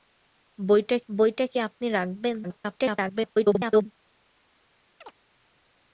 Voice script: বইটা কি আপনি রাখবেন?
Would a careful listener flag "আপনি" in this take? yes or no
no